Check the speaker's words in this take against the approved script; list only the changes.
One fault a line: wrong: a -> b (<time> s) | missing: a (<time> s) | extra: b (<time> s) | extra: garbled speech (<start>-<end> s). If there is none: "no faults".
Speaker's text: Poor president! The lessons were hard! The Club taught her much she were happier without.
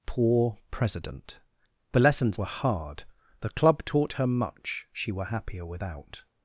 no faults